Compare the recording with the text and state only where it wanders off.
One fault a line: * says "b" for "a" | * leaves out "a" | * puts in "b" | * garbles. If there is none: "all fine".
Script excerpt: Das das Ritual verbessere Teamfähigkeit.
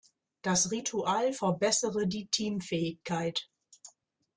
* leaves out "das"
* puts in "die"